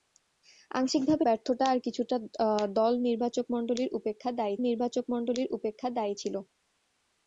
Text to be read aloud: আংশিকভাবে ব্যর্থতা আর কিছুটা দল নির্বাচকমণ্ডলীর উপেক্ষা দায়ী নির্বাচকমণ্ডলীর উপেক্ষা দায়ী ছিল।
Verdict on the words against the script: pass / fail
pass